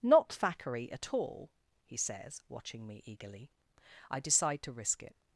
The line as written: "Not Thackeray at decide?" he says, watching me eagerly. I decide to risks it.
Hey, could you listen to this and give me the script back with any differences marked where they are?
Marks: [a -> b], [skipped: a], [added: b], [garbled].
"Not Thackeray at [decide?" -> all] he says, watching me eagerly. I decide to [risks -> risk] it.